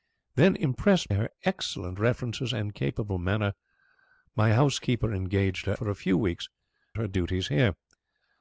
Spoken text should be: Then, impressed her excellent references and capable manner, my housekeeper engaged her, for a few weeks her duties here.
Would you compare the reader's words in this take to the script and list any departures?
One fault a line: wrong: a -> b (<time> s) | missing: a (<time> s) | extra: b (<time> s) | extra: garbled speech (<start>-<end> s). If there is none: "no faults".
no faults